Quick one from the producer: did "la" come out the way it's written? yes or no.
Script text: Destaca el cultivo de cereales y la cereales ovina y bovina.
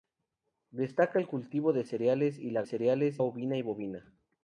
yes